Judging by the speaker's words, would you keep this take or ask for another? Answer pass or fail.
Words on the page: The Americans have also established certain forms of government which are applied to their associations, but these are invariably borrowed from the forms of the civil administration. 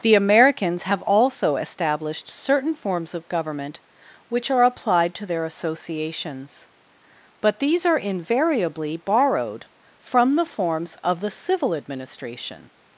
pass